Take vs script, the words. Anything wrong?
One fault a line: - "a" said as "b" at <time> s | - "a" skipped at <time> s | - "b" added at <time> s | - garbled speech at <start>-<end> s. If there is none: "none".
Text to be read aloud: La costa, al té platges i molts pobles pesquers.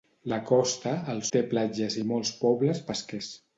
none